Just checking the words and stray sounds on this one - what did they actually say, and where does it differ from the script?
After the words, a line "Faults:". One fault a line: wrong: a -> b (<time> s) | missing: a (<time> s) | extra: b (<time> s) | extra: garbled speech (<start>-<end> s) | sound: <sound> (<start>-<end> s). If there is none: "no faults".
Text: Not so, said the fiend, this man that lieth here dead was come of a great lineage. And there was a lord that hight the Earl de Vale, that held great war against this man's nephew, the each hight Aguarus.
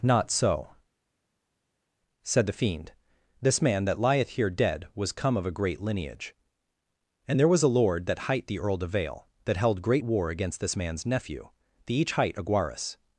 Not so, said the fiend, this man that lieth here dead was come of a great lineage. And there was a lord that hight the Earl de Vale, that held great war against this man's nephew, the each hight Aguarus.
Faults:
no faults